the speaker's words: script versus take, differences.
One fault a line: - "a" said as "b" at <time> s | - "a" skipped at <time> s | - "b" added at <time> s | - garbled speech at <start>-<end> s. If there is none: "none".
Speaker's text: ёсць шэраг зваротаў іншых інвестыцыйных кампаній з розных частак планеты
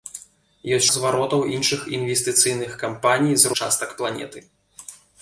- "шэраг" skipped at 0.9 s
- "розных" skipped at 3.5 s